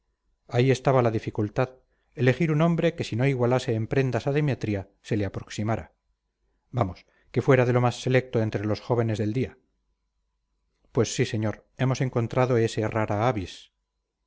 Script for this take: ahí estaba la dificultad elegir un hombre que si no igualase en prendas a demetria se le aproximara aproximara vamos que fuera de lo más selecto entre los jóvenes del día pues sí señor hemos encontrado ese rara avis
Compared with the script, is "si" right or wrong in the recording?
right